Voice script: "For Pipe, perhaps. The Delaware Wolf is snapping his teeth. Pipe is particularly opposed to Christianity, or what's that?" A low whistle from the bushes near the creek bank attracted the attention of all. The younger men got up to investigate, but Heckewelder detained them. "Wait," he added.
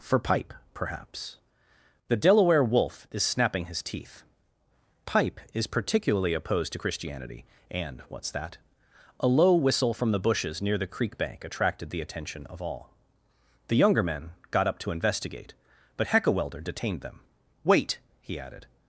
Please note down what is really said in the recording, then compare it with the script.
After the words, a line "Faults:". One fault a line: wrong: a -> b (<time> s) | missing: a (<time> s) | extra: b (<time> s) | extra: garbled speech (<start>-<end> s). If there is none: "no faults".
"For Pipe, perhaps. The Delaware Wolf is snapping his teeth. Pipe is particularly opposed to Christianity, and what's that?" A low whistle from the bushes near the creek bank attracted the attention of all. The younger men got up to investigate, but Heckewelder detained them. "Wait," he added.
Faults:
wrong: or -> and (7.7 s)